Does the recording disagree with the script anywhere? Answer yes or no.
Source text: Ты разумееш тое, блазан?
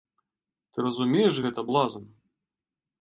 yes